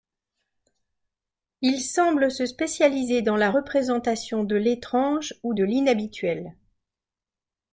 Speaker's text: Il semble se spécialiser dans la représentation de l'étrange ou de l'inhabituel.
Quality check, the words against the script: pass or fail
pass